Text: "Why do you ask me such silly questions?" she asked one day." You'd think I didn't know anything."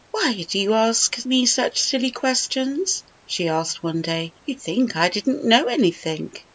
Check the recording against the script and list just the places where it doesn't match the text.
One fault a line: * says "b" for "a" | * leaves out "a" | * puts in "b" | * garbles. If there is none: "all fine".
all fine